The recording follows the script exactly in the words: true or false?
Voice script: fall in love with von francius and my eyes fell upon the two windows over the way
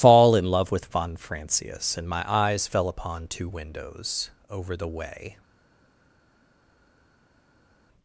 false